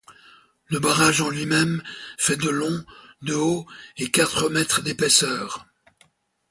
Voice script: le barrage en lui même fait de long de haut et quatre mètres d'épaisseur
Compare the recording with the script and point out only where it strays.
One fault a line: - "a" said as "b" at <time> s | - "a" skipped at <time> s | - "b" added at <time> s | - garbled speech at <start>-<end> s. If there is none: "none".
none